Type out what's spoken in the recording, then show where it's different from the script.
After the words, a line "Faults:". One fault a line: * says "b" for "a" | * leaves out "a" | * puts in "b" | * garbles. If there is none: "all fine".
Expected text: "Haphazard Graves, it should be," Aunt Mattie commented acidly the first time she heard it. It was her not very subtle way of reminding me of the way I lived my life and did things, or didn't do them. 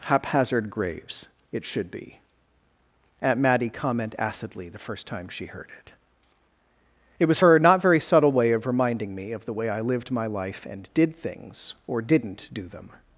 "Haphazard Graves, it should be," Aunt Mattie comment acidly the first time she heard it. It was her not very subtle way of reminding me of the way I lived my life and did things, or didn't do them.
Faults:
* says "comment" for "commented"